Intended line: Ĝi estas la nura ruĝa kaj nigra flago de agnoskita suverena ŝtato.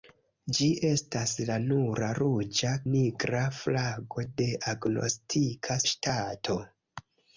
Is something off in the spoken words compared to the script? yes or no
yes